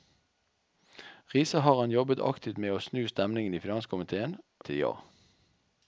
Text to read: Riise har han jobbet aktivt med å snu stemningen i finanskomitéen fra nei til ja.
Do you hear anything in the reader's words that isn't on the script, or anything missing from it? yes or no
yes